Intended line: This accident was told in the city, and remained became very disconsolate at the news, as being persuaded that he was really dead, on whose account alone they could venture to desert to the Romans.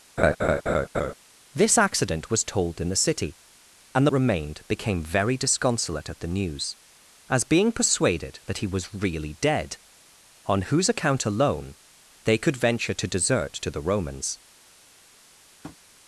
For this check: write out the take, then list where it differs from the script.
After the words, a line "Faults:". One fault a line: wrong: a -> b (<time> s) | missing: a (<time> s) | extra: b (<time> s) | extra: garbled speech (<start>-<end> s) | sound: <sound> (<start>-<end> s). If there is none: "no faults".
This accident was told in the city, and remained became very disconsolate at the news, as being persuaded that he was really dead, on whose account alone they could venture to desert to the Romans.
Faults:
sound: laugh (0.2-1.1 s)
sound: tap (15.6-15.8 s)